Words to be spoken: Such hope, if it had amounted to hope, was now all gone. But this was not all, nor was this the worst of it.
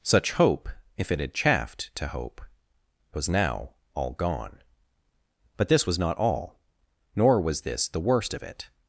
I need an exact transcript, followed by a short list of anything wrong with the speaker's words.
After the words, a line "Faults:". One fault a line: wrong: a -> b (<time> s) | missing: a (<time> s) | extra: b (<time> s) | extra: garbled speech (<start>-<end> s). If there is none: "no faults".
Such hope, if it had chaffed to hope, was now all gone. But this was not all, nor was this the worst of it.
Faults:
wrong: amounted -> chaffed (1.3 s)